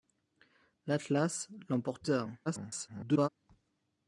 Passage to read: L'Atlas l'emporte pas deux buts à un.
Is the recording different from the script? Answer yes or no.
yes